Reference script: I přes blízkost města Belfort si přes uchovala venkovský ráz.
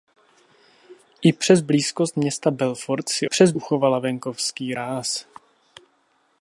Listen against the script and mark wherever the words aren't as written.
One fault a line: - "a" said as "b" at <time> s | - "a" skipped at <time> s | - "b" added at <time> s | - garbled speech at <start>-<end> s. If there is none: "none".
none